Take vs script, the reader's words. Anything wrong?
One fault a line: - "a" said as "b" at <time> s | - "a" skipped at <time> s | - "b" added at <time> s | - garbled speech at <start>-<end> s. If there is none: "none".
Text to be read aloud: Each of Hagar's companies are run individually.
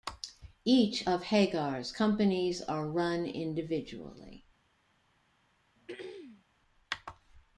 none